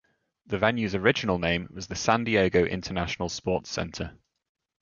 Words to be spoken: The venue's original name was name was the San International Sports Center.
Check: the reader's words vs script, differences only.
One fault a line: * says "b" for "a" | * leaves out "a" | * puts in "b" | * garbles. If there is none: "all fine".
* leaves out "name was"
* puts in "Diego"